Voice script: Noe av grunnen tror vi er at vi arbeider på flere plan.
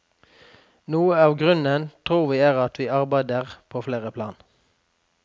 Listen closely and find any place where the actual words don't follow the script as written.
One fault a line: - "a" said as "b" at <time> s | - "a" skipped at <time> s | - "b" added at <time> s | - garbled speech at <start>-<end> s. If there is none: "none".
none